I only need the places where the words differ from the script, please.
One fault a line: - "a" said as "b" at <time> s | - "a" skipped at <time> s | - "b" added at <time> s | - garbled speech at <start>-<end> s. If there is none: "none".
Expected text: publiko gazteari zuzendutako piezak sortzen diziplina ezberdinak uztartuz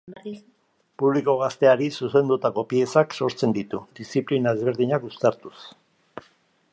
- "ditu" added at 3.6 s